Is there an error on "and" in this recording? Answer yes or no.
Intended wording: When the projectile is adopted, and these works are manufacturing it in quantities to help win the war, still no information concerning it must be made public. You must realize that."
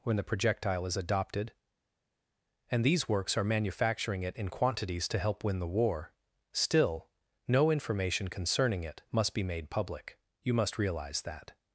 no